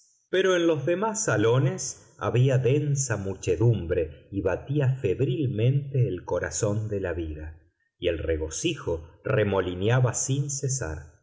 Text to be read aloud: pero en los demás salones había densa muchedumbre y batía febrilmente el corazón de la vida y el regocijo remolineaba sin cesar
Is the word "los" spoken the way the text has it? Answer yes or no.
yes